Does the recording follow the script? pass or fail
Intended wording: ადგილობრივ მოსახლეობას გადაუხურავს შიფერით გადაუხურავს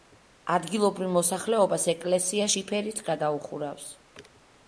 fail